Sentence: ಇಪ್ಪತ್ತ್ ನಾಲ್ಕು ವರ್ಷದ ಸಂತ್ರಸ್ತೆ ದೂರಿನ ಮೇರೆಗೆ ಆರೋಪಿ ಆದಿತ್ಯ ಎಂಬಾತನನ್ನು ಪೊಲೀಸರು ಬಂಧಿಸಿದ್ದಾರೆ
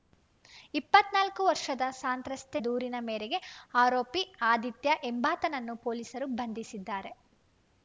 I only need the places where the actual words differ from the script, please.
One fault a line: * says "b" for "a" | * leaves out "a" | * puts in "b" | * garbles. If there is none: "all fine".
all fine